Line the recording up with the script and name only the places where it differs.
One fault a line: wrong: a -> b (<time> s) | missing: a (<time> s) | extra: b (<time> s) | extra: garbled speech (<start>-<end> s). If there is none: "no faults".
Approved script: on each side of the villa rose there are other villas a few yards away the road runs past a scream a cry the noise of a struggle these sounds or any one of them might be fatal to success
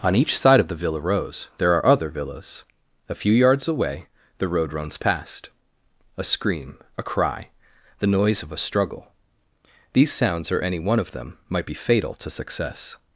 no faults